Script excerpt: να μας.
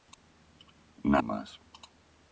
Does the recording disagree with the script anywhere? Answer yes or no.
no